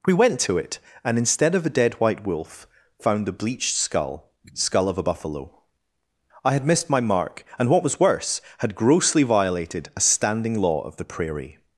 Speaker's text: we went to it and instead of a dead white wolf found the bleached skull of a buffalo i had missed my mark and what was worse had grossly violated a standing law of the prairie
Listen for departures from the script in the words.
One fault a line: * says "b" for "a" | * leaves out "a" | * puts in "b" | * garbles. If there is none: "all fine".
* puts in "skull"